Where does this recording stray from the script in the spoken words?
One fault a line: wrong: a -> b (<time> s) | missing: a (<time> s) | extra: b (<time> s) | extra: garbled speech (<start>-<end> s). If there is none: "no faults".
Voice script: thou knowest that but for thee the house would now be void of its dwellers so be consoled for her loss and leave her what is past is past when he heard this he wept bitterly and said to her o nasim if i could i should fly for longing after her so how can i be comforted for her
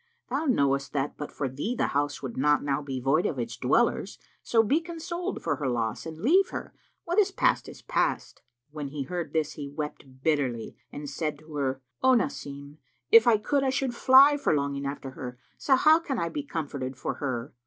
extra: not (2.4 s)